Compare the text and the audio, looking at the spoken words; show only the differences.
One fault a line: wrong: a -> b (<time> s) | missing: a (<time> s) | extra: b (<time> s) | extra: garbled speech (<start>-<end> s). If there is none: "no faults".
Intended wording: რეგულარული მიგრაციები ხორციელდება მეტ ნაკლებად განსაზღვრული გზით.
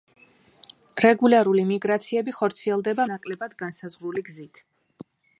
missing: მეტ (3.1 s)